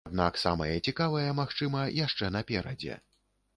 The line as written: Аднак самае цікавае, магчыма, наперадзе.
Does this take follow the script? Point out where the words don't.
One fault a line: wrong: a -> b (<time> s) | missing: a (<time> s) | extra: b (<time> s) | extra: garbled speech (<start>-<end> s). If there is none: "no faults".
extra: яшчэ (2.0 s)